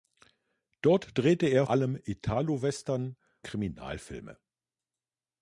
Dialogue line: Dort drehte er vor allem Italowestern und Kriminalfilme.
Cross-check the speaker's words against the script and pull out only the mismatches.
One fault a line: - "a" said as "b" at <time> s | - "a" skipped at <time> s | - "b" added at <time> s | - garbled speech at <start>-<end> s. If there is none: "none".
- "vor" skipped at 1.7 s
- "und" skipped at 3.2 s